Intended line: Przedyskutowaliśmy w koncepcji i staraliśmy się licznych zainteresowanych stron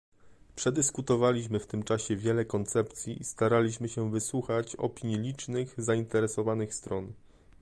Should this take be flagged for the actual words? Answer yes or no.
yes